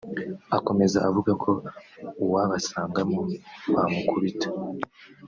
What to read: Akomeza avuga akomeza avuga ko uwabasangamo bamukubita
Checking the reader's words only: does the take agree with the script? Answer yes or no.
no